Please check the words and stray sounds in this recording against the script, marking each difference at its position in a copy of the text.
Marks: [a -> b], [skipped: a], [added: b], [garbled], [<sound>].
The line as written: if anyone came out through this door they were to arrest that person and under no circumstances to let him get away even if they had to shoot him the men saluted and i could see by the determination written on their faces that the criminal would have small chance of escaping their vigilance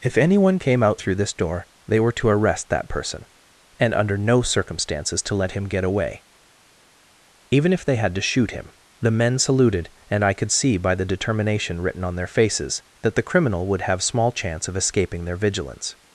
if anyone came out through this door they were to arrest that person and under no circumstances to let him get away even if they had to shoot him the men saluted and i could see by the determination written on their faces that the criminal would have small chance of escaping their vigilance